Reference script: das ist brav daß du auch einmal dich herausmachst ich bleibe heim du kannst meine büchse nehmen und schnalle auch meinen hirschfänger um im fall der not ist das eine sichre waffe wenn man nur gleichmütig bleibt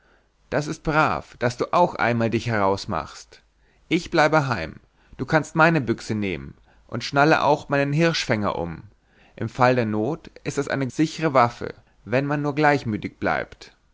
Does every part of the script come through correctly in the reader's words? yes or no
yes